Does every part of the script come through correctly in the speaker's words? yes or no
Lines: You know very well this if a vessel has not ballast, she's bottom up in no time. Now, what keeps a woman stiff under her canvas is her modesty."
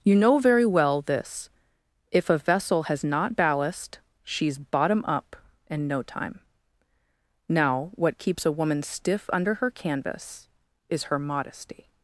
yes